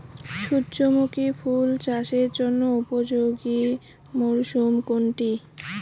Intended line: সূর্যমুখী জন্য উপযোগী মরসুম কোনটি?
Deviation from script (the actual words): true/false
true